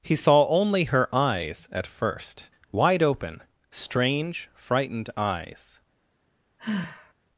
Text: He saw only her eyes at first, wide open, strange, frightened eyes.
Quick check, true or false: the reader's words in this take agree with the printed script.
true